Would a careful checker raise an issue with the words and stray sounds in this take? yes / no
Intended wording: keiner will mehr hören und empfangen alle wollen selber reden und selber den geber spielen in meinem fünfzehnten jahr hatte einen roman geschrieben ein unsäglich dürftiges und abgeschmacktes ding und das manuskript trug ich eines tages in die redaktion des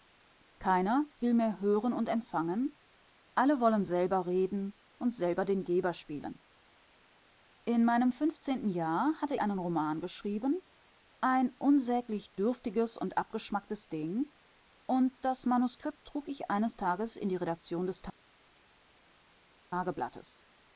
no